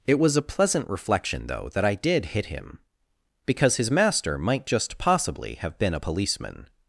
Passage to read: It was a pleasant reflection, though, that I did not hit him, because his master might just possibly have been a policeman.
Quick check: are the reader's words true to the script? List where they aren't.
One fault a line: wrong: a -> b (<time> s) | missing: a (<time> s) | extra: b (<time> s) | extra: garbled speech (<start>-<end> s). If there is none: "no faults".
missing: not (2.3 s)